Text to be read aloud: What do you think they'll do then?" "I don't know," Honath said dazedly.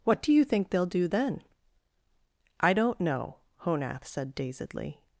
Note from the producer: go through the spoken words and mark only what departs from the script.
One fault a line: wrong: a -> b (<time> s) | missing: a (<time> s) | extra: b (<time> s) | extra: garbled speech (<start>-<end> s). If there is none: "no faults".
no faults